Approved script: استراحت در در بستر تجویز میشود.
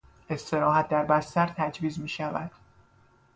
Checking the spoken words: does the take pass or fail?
fail